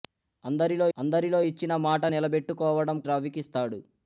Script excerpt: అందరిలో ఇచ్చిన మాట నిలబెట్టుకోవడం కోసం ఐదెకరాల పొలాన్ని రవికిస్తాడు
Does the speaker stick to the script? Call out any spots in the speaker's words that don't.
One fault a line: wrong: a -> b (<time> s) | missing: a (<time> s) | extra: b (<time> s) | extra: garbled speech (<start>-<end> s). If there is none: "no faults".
extra: అందరిలో (1.0 s)
missing: కోసం ఐదెకరాల పొలాన్ని (3.0 s)